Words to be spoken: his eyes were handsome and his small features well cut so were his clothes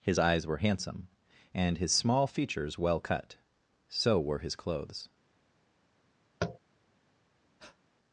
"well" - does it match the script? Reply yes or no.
yes